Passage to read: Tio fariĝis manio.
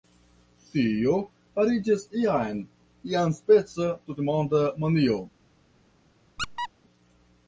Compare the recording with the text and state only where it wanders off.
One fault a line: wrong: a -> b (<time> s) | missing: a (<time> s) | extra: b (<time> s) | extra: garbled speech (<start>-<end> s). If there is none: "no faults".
extra: jam iaspeca tutmonda (2.2 s)